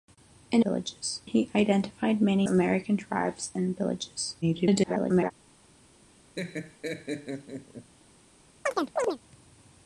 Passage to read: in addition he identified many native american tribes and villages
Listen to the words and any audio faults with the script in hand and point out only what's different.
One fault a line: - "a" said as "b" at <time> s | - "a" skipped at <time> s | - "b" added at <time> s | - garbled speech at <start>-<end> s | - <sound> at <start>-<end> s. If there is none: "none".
- "addition" said as "villages" at 0.6 s
- "native" skipped at 2.5 s
- garbled speech at 4.4-5.3 s
- laugh at 6.4-7.9 s
- chirp at 8.7-9.2 s